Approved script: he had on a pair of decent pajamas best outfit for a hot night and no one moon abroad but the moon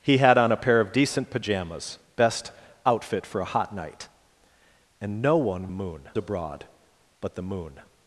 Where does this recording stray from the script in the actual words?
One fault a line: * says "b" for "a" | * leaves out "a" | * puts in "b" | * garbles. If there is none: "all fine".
all fine